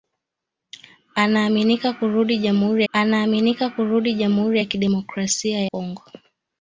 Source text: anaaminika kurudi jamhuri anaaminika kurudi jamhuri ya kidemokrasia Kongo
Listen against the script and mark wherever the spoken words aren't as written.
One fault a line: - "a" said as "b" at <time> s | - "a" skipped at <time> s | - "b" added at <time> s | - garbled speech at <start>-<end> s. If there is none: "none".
none